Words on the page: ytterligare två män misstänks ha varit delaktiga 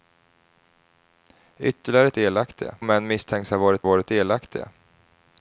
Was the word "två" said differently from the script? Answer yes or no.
yes